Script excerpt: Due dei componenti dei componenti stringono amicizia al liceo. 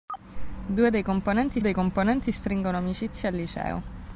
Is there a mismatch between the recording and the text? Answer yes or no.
no